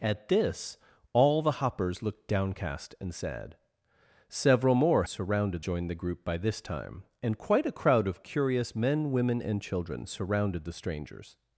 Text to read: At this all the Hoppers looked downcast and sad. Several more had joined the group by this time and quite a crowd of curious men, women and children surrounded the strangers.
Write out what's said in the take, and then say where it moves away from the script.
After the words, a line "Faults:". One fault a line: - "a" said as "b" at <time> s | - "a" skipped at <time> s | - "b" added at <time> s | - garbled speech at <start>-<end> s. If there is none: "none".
At this all the Hoppers looked downcast and sad. Several more surrounded joined the group by this time and quite a crowd of curious men, women and children surrounded the strangers.
Faults:
- "had" said as "surrounded" at 5.0 s